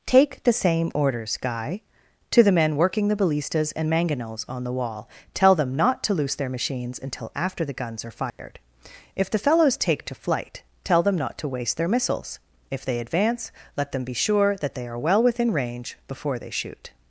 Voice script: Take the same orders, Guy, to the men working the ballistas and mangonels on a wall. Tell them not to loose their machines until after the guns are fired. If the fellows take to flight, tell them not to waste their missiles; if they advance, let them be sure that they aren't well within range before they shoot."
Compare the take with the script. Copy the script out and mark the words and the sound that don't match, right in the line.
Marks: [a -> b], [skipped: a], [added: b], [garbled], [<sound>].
Take the same orders, Guy, to the men working the ballistas and mangonels on [a -> the] wall. Tell them not to loose their machines until after the guns are fired. [dropout] If the fellows take to flight, tell them not to waste their missiles; if they advance, let them be sure that they [aren't -> are] well within range before they shoot."